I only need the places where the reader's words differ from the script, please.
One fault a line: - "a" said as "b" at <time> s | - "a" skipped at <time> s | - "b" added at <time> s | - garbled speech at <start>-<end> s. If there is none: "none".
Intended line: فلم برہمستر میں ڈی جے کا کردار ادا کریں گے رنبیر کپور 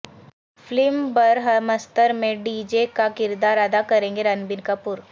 none